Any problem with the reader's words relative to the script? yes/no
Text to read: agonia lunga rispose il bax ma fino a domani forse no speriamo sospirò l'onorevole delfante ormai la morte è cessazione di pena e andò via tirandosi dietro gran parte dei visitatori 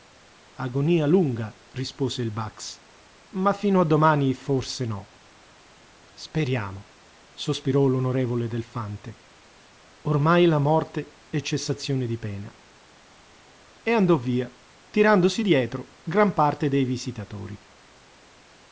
no